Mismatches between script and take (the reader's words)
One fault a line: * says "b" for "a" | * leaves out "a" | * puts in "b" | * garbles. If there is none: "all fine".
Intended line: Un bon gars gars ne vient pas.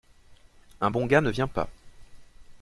* leaves out "gars"